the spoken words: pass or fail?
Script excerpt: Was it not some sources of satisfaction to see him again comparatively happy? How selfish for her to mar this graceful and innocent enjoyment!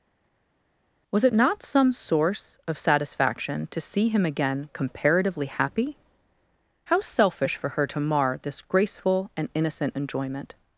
fail